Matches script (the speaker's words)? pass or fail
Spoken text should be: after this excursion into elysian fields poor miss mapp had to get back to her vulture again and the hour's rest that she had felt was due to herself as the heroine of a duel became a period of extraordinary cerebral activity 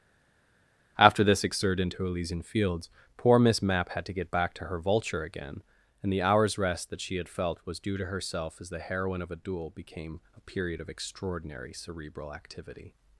fail